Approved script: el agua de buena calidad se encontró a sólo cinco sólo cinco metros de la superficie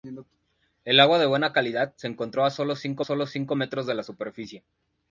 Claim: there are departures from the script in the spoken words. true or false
false